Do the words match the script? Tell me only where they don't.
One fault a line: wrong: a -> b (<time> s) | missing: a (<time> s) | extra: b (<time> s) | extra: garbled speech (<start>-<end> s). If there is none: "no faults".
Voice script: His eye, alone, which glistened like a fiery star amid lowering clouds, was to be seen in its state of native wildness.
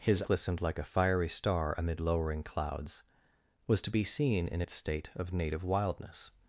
missing: eye alone which (0.2 s)